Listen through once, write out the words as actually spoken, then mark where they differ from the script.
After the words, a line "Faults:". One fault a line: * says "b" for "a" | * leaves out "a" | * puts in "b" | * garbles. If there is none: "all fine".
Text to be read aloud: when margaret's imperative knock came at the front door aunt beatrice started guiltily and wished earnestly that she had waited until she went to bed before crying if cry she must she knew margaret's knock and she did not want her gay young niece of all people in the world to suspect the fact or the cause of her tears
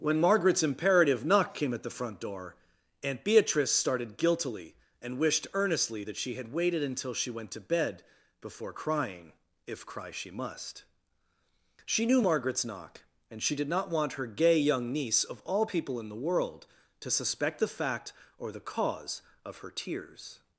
when margaret's imperative knock came at the front door aunt beatrice started guiltily and wished earnestly that she had waited until she went to bed before crying if cry she must she knew margaret's knock and she did not want her gay young niece of all people in the world to suspect the fact or the cause of her tears
Faults:
all fine